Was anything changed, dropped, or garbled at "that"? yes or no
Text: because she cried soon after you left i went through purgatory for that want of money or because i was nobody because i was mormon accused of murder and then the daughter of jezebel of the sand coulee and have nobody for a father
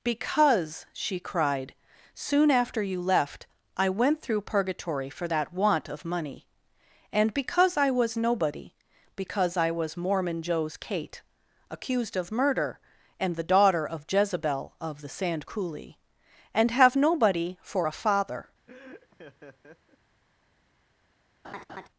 no